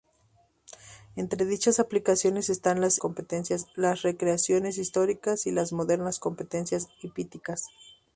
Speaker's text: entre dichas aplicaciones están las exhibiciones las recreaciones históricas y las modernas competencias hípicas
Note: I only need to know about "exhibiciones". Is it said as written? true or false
false